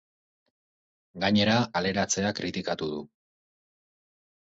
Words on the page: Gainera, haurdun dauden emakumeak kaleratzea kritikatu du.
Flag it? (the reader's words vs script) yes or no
yes